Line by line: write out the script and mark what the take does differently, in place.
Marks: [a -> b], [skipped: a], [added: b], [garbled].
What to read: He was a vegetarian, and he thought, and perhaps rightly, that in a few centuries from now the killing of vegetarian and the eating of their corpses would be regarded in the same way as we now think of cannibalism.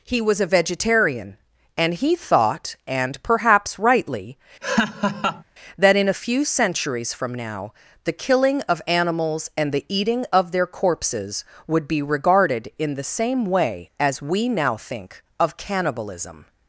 He was a vegetarian, and he thought, and perhaps rightly, that in a few centuries from now the killing of [vegetarian -> animals] and the eating of their corpses would be regarded in the same way as we now think of cannibalism.